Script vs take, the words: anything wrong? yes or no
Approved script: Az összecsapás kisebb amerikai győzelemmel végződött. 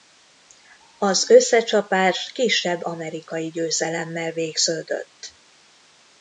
no